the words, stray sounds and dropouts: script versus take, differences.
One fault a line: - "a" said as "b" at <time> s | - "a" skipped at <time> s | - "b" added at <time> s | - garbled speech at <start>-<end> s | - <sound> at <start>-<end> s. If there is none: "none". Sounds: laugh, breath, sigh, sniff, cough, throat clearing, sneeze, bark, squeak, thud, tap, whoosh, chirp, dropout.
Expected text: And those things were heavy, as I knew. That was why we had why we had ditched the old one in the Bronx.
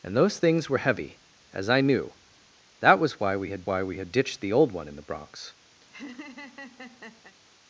- laugh at 5.8-7.4 s